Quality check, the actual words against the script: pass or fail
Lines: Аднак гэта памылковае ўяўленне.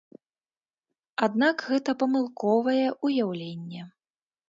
pass